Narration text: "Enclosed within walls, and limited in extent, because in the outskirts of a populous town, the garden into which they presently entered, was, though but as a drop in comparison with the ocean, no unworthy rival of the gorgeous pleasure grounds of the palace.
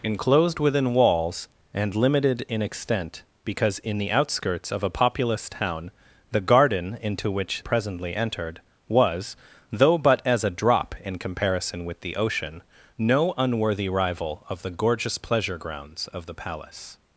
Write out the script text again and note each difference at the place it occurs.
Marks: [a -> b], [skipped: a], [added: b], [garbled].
"Enclosed within walls, and limited in extent, because in the outskirts of a populous town, the garden into which [skipped: they] presently entered, was, though but as a drop in comparison with the ocean, no unworthy rival of the gorgeous pleasure grounds of the palace.